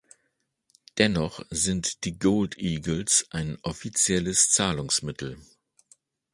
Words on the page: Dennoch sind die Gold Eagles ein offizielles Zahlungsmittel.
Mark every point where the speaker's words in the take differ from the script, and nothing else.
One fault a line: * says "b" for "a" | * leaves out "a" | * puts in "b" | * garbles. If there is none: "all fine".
all fine